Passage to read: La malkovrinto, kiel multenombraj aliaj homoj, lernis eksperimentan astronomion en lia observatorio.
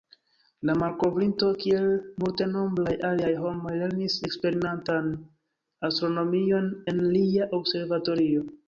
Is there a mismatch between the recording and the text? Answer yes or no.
no